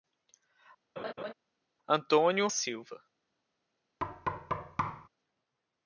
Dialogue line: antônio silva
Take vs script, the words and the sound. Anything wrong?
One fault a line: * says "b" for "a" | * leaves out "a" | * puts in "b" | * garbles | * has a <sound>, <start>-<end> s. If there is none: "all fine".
* has a laugh, 1.0-1.3 s
* has a thud, 4.0-5.1 s